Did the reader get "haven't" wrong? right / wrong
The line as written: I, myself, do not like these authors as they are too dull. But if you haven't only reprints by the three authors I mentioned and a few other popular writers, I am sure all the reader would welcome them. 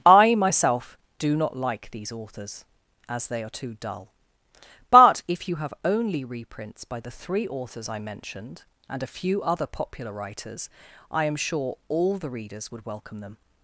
wrong